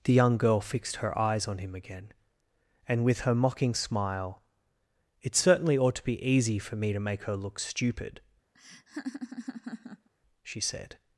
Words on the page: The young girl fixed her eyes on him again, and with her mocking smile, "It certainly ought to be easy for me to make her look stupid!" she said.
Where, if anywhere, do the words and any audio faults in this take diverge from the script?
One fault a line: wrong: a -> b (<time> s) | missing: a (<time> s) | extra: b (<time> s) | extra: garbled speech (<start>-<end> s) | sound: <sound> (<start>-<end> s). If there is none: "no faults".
sound: laugh (8.5-10.1 s)